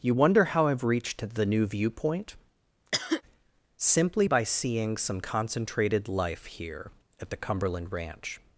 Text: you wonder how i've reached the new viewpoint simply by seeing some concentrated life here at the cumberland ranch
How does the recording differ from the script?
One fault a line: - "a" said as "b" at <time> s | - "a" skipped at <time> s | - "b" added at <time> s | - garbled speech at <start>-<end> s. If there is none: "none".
none